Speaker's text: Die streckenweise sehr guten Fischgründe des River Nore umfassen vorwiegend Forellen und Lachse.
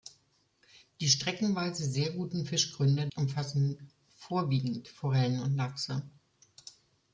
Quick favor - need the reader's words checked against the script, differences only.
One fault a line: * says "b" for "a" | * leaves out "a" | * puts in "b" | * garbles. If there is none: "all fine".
* leaves out "des River Nore"